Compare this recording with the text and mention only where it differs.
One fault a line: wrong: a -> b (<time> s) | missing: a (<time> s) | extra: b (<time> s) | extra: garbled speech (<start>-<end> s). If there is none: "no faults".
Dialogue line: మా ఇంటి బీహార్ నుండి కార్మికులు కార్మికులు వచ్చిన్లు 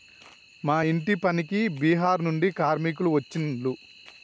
extra: పనికి (1.2 s)
missing: కార్మికులు (3.1 s)